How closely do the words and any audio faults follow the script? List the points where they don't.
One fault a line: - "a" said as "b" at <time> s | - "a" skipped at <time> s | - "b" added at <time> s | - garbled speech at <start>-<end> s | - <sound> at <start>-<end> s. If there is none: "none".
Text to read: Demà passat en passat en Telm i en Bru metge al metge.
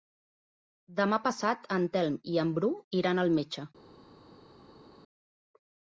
- "passat en" skipped at 1.9 s
- "metge" said as "iran" at 3.0 s